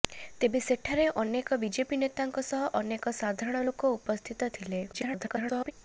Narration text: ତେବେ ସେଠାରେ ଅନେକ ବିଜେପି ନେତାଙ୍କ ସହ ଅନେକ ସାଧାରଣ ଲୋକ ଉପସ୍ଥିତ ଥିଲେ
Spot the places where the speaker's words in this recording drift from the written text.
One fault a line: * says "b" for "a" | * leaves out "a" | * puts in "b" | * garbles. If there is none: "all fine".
* garbles